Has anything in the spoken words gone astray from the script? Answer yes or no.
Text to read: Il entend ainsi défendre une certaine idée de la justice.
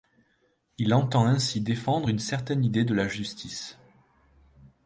no